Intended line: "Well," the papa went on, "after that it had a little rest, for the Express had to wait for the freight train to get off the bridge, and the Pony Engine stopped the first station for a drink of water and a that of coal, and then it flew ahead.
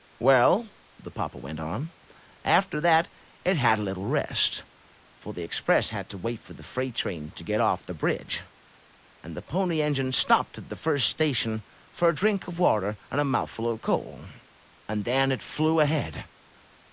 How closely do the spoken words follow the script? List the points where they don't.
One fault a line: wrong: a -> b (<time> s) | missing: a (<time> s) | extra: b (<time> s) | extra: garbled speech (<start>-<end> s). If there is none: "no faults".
extra: at (10.6 s)
wrong: that -> mouthful (13.3 s)